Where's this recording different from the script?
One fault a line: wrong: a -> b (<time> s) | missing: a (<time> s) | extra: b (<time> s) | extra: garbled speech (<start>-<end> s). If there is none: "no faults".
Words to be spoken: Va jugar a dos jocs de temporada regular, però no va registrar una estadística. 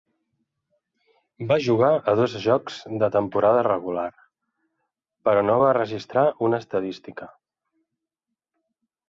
no faults